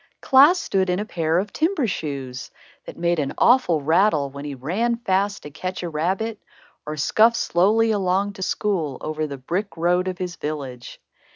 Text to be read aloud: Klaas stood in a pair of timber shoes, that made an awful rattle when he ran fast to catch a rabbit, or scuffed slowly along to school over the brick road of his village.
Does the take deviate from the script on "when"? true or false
false